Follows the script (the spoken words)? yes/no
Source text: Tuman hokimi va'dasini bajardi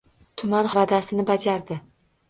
no